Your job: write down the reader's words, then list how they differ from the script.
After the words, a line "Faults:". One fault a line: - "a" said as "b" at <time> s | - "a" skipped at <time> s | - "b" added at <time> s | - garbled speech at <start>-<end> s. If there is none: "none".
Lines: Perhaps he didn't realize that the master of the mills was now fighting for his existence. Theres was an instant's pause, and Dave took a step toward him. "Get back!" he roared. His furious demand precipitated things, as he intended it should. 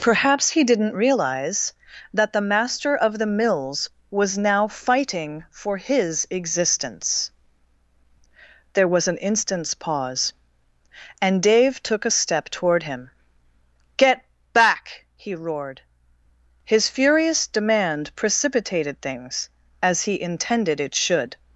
Perhaps he didn't realize that the master of the mills was now fighting for his existence. There was an instant's pause, and Dave took a step toward him. "Get back!" he roared. His furious demand precipitated things, as he intended it should.
Faults:
- "Theres" said as "There" at 8.7 s